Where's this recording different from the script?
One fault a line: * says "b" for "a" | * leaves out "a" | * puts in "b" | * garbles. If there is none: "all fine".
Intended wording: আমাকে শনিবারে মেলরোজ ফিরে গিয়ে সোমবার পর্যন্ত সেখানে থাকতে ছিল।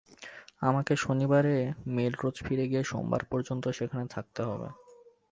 * says "হবে" for "ছিল"